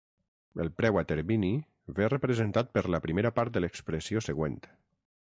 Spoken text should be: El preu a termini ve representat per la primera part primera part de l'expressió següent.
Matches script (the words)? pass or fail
fail